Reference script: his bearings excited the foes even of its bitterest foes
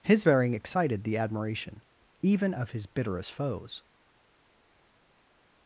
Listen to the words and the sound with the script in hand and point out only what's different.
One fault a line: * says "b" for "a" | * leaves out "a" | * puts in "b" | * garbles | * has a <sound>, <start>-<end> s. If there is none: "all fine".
* says "bearing" for "bearings"
* says "admiration" for "foes"
* says "his" for "its"